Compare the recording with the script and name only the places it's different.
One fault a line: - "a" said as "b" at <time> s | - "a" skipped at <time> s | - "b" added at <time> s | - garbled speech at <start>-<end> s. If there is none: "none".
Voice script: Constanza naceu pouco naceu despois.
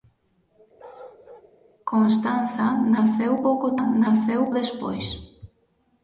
none